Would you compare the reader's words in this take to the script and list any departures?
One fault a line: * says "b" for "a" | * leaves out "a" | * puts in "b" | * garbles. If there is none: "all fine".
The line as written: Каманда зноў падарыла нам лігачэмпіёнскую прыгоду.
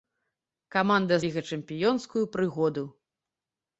* leaves out "зноў падарыла нам"